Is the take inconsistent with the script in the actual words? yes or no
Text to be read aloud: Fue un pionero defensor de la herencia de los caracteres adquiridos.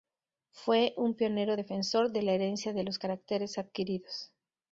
no